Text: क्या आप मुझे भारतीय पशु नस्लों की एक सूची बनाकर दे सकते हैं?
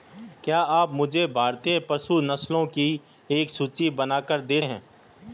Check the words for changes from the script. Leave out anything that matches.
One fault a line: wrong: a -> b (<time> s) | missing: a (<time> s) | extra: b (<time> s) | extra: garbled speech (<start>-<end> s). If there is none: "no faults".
missing: सकते (4.6 s)